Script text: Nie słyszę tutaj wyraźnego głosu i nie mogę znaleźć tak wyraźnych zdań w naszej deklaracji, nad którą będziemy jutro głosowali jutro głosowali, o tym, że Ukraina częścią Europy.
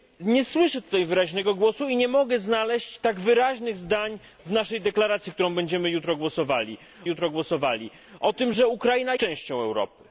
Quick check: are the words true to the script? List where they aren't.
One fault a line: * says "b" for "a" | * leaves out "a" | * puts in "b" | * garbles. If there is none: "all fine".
all fine